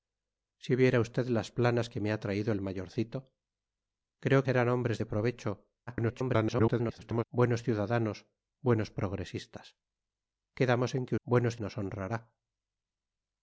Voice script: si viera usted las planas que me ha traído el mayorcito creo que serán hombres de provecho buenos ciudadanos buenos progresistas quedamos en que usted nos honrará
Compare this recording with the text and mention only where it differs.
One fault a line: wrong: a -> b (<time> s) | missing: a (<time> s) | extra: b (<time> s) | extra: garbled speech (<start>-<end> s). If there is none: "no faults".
missing: que (4.4 s)
extra: garbled speech (5.9-7.2 s)
wrong: usted -> buenos (11.2 s)